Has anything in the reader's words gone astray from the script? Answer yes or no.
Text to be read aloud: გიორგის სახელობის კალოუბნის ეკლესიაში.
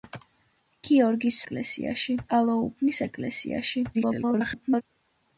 yes